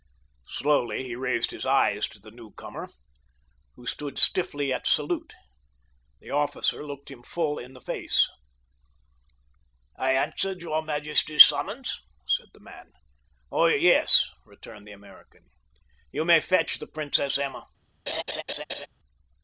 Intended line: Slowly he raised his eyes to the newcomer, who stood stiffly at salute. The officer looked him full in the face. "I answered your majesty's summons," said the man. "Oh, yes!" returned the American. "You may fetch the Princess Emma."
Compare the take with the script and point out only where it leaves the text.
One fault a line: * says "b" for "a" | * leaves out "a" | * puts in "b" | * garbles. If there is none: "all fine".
all fine